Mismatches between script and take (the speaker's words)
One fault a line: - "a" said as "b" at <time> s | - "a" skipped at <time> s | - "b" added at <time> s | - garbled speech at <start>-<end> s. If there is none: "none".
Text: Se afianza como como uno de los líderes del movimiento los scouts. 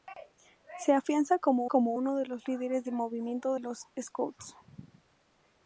none